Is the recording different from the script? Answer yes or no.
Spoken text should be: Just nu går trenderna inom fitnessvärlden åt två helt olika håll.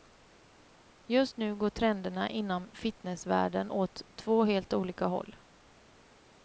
no